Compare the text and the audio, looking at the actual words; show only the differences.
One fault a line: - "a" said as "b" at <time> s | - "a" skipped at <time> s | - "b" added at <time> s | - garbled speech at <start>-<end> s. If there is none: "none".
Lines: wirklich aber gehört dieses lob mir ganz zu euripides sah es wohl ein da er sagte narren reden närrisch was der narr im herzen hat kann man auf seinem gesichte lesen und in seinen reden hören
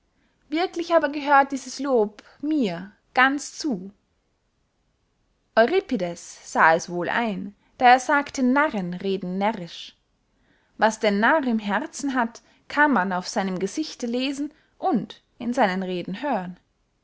none